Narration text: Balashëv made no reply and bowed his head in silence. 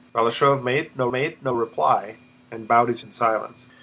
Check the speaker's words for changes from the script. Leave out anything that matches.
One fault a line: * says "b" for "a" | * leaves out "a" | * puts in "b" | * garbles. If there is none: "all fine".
* puts in "made no"
* leaves out "head"